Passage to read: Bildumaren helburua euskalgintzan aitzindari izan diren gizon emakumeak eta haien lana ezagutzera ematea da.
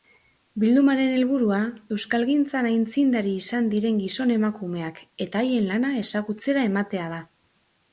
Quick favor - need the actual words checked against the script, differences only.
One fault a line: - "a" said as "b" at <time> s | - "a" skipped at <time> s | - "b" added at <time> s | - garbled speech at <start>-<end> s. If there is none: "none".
none